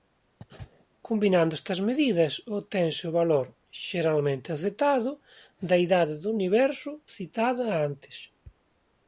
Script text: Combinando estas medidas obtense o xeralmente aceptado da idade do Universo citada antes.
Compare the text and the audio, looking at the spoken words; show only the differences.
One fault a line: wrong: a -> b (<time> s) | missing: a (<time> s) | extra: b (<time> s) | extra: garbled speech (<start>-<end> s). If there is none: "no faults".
extra: valor (3.2 s)